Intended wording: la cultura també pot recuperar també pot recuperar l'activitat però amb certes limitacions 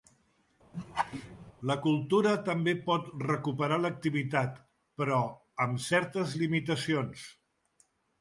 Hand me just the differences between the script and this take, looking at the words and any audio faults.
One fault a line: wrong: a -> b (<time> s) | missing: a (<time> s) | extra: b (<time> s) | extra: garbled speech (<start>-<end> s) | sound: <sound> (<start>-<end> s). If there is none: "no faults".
sound: laugh (0.7-1.5 s)
missing: també pot recuperar (3.8 s)